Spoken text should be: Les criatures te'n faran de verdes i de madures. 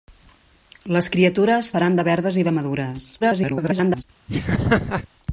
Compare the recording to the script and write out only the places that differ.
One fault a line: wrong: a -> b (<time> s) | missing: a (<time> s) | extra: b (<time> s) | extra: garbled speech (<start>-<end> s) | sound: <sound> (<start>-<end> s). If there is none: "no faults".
missing: te'n (1.7 s)
extra: garbled speech (3.2-4.0 s)
sound: laugh (4.3-5.1 s)